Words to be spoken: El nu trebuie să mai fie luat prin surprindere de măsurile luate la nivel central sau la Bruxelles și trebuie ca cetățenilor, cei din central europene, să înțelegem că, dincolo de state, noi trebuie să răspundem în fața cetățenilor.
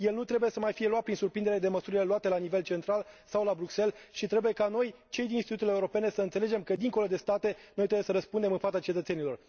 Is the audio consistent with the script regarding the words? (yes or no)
no